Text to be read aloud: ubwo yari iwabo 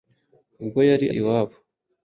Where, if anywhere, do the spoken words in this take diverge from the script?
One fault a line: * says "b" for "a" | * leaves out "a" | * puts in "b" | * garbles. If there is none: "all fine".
all fine